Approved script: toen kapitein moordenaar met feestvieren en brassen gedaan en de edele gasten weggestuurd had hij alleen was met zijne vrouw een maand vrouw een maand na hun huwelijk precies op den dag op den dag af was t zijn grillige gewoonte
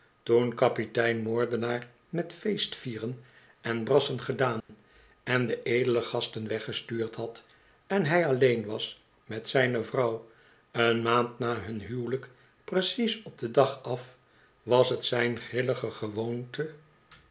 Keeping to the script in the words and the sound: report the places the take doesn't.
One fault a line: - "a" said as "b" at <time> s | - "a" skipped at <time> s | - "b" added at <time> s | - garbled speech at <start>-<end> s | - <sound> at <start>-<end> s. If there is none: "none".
- dropout at 4.6-4.7 s
- "en" added at 7.9 s
- "vrouw een maand" skipped at 11.4 s
- "op den dag" skipped at 13.8 s